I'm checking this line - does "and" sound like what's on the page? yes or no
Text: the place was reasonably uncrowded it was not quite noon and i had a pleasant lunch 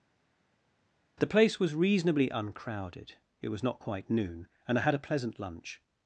yes